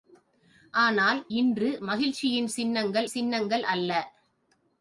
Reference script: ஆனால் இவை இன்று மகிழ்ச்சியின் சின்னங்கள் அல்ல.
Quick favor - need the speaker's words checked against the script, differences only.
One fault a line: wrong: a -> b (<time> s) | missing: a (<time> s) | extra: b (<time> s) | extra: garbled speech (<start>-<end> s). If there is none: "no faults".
missing: இவை (1.2 s)
extra: சின்னங்கள் (3.1 s)